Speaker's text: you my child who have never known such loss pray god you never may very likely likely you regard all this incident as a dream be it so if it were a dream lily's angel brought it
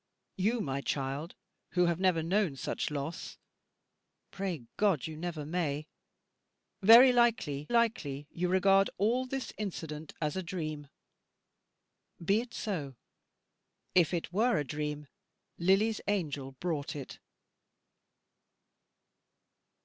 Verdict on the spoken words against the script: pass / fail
pass